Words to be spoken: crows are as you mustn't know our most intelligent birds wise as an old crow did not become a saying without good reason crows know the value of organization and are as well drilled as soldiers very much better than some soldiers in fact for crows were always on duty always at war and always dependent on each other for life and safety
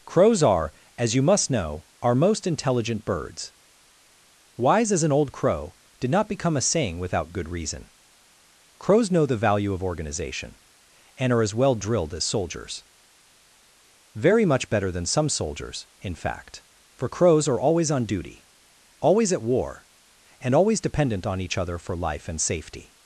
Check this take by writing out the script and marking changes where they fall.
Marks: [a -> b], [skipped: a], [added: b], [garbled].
crows are as you [mustn't -> must] know our most intelligent birds wise as an old crow did not become a saying without good reason crows know the value of organization and are as well drilled as soldiers very much better than some soldiers in fact for crows [were -> are] always on duty always at war and always dependent on each other for life and safety